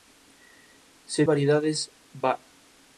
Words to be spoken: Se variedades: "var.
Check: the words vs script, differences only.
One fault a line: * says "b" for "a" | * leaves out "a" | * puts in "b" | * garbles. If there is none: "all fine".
all fine